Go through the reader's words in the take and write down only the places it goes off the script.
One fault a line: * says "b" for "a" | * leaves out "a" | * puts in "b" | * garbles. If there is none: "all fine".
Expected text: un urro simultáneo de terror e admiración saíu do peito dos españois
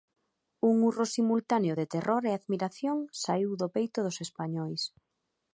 all fine